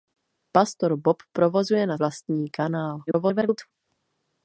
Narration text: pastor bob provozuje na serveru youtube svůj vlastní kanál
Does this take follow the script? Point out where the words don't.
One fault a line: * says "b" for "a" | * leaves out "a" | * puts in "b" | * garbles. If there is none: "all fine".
* leaves out "serveru youtube svůj"
* garbles